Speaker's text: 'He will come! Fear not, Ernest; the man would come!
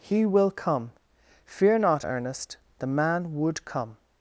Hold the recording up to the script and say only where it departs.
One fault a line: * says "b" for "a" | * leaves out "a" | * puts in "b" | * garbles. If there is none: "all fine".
all fine